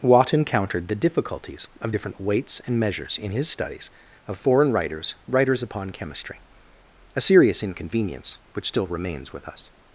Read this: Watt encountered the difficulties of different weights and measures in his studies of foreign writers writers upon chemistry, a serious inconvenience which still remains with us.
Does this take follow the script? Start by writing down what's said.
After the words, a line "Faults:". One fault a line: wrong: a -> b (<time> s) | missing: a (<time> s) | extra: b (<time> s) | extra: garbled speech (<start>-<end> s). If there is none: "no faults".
Watt encountered the difficulties of different weights and measures in his studies of foreign writers writers upon chemistry, a serious inconvenience which still remains with us.
Faults:
no faults